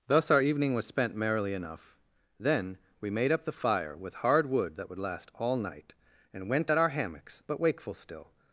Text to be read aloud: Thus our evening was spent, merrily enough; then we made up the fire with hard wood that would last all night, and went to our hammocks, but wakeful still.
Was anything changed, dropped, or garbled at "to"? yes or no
yes